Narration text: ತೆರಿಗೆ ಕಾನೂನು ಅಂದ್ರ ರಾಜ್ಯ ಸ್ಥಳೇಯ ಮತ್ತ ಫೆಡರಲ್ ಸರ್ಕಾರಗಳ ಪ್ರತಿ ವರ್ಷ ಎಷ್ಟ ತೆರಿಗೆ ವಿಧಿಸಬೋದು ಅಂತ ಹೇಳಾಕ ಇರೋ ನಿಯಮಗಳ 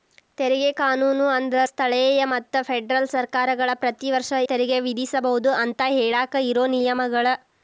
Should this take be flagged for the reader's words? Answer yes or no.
yes